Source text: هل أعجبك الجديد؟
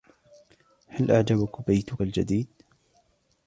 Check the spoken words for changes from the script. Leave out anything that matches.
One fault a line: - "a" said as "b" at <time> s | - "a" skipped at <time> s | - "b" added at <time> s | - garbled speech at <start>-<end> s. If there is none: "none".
- "بيتك" added at 1.7 s